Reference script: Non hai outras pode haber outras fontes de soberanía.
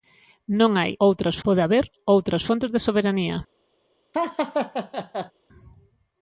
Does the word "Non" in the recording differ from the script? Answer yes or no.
no